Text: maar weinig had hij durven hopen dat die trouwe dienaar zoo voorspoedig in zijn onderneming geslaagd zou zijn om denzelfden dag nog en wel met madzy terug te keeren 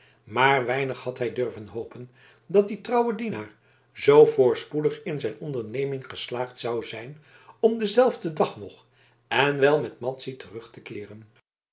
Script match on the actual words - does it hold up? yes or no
yes